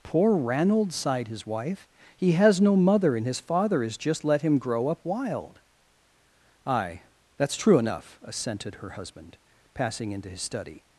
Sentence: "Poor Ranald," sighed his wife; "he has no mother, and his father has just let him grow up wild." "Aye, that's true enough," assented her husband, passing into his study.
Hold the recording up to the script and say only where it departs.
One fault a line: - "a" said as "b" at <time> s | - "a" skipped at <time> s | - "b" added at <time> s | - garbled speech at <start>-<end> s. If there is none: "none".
none